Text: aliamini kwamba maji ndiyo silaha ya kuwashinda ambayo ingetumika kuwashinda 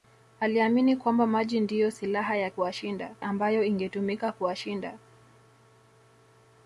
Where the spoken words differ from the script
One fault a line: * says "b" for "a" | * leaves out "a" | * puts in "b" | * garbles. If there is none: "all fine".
all fine